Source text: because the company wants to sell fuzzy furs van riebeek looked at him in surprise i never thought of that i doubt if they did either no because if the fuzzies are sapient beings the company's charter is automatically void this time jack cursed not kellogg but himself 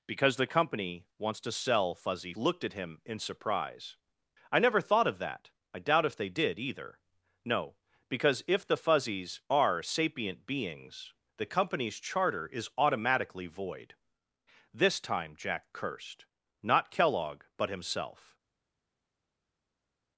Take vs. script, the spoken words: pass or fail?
fail